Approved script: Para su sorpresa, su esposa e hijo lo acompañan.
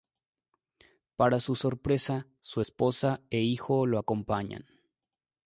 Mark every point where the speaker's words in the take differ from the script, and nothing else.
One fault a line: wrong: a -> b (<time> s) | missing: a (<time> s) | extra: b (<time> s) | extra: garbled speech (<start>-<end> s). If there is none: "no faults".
no faults